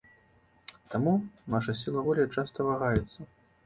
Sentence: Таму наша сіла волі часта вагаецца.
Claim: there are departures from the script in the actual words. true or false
false